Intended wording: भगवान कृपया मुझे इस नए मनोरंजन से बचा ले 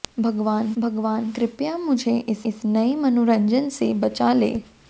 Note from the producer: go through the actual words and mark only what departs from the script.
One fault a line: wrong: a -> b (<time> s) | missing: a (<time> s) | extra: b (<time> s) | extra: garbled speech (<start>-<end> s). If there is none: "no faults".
extra: भगवान (0.8 s)
extra: इस (2.5 s)